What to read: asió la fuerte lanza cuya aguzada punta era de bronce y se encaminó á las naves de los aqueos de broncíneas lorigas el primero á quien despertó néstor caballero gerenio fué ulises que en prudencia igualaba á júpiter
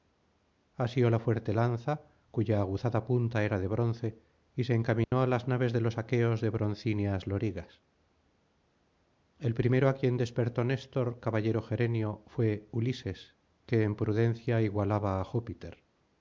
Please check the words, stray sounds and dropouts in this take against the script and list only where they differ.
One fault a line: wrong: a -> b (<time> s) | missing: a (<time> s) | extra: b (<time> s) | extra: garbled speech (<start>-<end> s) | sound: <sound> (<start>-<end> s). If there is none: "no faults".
sound: dropout (5.0-5.1 s)